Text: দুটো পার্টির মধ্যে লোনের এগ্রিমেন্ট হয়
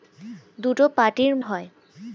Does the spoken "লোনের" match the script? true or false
false